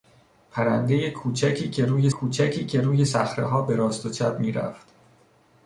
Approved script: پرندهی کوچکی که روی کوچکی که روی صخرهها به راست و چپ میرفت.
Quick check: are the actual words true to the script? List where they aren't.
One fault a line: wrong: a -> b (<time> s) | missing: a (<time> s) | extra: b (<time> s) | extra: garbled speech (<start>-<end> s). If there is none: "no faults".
no faults